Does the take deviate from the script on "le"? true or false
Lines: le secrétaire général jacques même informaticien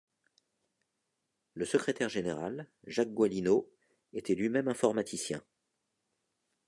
false